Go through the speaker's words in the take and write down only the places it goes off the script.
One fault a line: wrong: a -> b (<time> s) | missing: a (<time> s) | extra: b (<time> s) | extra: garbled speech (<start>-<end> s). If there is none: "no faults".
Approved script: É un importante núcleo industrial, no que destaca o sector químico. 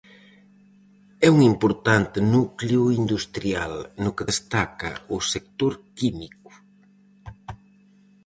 no faults